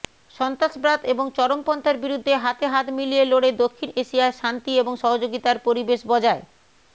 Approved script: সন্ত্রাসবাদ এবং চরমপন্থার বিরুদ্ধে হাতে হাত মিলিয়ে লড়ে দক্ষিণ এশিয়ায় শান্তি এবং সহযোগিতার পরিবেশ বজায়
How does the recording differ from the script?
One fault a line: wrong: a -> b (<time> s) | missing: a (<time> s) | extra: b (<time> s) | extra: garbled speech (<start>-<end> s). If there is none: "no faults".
no faults